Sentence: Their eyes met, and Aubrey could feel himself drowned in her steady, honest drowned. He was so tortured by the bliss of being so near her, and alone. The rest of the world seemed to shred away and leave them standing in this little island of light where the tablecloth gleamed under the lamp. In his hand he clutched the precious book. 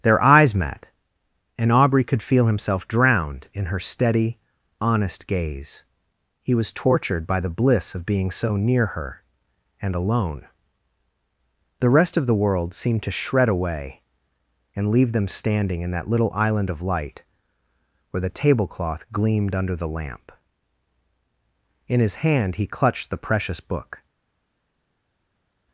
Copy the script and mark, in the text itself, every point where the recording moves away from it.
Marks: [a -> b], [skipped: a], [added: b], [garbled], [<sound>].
Their eyes met, and Aubrey could feel himself drowned in her steady, honest [drowned. -> gaze] He was [skipped: so] tortured by the bliss of being so near her, and alone. The rest of the world seemed to shred away and leave them standing in [this -> that] little island of light where the tablecloth gleamed under the lamp. In his hand he clutched the precious book.